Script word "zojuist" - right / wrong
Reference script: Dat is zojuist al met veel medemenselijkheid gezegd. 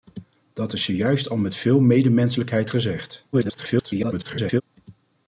right